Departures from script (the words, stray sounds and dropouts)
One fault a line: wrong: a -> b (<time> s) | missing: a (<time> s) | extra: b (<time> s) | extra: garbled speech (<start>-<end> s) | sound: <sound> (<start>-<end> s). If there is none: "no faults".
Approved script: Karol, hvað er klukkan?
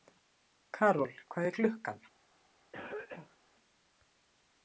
sound: cough (2.7-3.4 s)